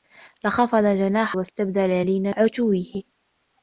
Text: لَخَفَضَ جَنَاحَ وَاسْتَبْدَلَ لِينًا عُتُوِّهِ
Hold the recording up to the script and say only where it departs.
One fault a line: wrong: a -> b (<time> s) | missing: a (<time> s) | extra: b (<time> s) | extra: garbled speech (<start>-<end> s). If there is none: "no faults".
no faults